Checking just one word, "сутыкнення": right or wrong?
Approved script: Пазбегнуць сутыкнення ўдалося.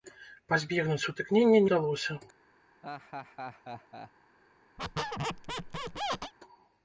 right